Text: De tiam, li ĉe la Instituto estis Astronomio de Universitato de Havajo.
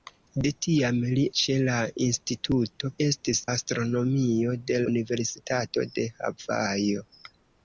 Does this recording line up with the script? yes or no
yes